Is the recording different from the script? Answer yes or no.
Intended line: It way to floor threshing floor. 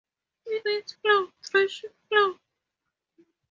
no